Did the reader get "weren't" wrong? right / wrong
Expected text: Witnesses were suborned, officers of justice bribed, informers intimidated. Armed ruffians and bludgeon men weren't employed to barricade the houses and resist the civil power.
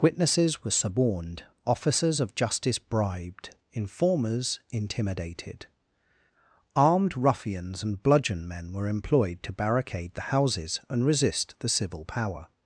wrong